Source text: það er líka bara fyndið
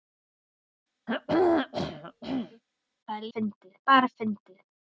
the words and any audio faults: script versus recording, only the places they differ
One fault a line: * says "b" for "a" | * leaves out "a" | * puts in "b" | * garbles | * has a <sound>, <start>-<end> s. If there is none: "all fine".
* has a throat clearing, 1.1-2.6 s
* says "fyndið" for "líka"